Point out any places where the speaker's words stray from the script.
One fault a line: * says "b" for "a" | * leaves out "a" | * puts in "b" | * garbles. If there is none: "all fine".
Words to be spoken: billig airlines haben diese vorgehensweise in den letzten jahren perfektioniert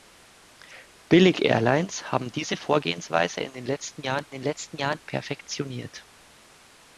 * puts in "den letzten jahren"